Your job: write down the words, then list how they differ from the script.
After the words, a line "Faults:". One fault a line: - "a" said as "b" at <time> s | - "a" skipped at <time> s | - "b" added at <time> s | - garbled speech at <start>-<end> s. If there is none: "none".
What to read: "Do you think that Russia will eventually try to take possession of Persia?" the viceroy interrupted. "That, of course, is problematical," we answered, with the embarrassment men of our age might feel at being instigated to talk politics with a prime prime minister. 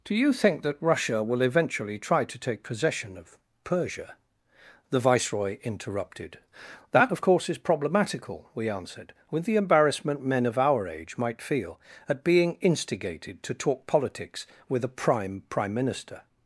"Do you think that Russia will eventually try to take possession of Persia?" the viceroy interrupted. "That, of course, is problematical," we answered, with the embarrassment men of our age might feel at being instigated to talk politics with a prime prime minister.
Faults:
none